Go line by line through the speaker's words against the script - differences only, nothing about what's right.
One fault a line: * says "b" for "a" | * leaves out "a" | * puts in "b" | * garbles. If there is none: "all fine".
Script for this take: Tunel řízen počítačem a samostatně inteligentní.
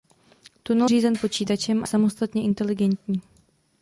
all fine